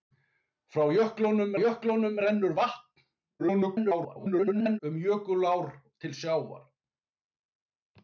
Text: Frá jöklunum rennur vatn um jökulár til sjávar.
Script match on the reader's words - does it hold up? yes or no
no